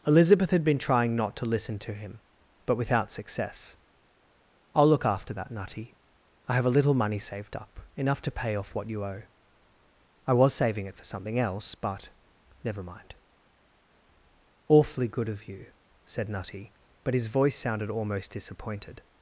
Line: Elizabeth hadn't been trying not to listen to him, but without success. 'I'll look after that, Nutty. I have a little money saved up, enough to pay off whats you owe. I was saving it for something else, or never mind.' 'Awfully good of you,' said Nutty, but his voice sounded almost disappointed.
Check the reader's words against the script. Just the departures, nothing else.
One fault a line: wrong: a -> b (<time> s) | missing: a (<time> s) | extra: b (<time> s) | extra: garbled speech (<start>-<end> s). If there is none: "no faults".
wrong: hadn't -> had (0.5 s)
wrong: whats -> what (8.7 s)
wrong: or -> but (11.7 s)